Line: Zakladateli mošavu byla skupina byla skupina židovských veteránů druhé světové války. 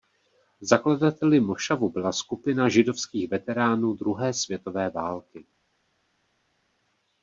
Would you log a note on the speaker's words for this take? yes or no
yes